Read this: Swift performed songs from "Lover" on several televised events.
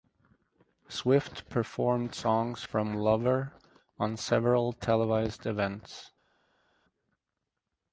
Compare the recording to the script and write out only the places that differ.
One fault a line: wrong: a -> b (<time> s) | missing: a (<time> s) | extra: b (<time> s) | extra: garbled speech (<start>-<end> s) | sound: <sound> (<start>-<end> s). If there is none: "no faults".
no faults